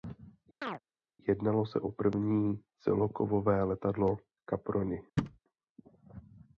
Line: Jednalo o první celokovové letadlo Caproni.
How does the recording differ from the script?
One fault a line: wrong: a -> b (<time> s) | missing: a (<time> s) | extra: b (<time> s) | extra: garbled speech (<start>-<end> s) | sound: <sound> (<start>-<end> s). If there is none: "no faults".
sound: chirp (0.6-0.8 s)
extra: se (1.7 s)
sound: thud (5.2-5.4 s)